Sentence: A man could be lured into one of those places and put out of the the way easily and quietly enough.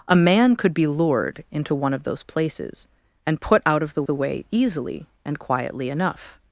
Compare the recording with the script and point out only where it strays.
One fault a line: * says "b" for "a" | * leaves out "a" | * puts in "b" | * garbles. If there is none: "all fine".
all fine